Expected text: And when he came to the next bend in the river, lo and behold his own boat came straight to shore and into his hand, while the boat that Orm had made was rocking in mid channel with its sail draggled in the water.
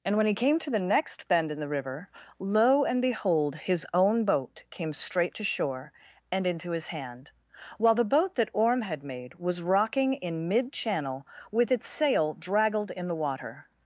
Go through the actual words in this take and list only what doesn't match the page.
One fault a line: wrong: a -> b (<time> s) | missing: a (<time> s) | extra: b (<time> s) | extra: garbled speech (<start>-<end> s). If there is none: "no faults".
no faults